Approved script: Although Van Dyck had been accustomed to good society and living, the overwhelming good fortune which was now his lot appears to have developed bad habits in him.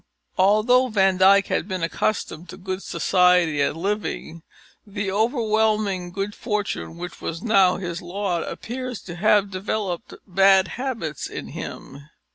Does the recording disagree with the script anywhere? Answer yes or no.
no